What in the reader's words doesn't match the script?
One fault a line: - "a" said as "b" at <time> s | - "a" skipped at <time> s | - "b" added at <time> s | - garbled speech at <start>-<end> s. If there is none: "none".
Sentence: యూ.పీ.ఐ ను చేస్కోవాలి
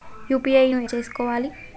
none